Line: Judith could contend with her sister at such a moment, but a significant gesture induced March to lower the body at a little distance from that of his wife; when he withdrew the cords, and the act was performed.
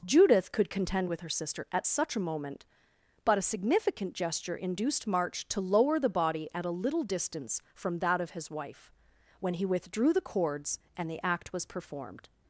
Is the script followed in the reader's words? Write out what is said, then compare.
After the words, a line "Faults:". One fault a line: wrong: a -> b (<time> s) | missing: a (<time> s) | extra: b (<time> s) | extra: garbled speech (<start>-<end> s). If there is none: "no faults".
Judith could contend with her sister at such a moment, but a significant gesture induced March to lower the body at a little distance from that of his wife; when he withdrew the cords, and the act was performed.
Faults:
no faults